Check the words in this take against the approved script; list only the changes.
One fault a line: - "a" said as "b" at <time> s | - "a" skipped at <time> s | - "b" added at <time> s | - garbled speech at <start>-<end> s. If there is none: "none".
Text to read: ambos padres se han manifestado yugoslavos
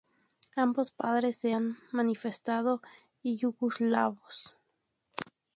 none